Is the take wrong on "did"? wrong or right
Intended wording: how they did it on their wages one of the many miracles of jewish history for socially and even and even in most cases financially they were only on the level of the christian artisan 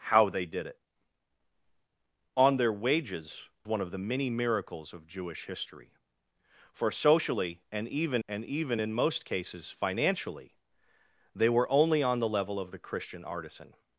right